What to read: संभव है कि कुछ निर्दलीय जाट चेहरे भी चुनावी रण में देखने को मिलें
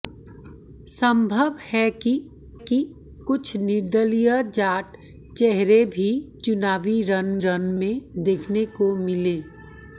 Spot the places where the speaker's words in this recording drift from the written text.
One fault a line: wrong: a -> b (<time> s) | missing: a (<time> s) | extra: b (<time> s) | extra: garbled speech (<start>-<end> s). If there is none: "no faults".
extra: कि (2.6 s)
extra: रण (7.4 s)